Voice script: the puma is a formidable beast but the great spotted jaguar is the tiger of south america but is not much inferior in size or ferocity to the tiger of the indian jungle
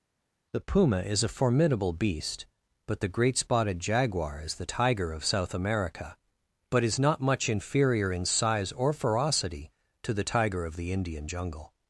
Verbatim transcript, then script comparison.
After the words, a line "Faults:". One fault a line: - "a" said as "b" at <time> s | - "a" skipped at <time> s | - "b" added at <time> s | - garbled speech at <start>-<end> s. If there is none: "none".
the puma is a formidable beast but the great spotted jaguar is the tiger of south america but is not much inferior in size or ferocity to the tiger of the indian jungle
Faults:
none